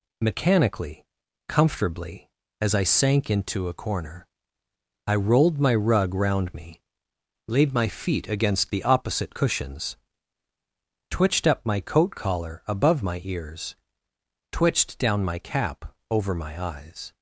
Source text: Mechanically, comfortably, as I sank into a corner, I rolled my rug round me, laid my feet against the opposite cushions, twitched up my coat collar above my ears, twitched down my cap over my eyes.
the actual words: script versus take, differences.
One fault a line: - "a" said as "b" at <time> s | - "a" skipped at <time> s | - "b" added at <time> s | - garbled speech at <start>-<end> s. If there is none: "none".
none